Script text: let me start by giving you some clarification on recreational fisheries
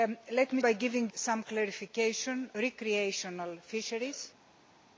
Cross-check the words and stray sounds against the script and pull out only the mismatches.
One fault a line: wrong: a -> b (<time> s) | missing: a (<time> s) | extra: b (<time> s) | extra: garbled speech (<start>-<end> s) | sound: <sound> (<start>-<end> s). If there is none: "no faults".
missing: start (0.6 s)
missing: you (1.1 s)
missing: on (2.5 s)